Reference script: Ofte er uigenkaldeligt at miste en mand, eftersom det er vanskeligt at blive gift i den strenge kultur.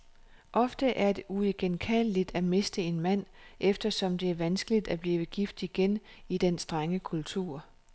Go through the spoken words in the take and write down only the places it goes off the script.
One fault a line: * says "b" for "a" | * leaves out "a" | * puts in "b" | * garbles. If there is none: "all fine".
* puts in "det"
* puts in "igen"